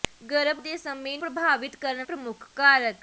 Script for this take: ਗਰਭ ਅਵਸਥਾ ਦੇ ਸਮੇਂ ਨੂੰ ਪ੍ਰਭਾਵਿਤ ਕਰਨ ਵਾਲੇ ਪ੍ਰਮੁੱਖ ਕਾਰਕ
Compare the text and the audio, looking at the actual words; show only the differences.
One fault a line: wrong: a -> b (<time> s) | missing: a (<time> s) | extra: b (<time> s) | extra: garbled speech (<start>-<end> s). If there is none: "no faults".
missing: ਅਵਸਥਾ (0.6 s)
missing: ਨੂੰ (1.2 s)
missing: ਵਾਲੇ (2.1 s)